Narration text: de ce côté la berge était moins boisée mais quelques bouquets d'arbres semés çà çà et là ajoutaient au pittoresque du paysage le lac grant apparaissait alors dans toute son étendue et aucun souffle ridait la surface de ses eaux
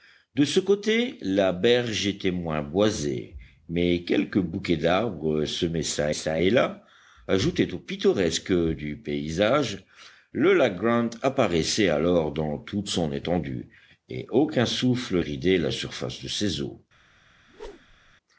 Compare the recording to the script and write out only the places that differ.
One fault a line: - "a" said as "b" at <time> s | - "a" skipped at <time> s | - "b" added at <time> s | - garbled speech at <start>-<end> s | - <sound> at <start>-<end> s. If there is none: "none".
- whoosh at 17.5-18.2 s